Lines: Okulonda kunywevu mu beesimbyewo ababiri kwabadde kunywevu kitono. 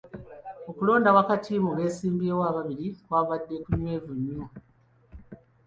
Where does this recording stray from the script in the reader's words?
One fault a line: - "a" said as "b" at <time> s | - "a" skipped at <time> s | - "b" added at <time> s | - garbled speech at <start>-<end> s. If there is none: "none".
- "kunywevu" said as "wakati" at 1.2 s
- "kitono" said as "nnyo" at 4.2 s